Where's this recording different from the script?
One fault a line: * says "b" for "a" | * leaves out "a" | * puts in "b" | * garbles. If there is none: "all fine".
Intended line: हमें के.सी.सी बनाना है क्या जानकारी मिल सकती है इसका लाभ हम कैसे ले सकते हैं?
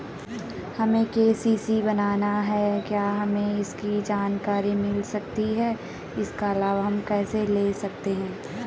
* puts in "हमें इसकी"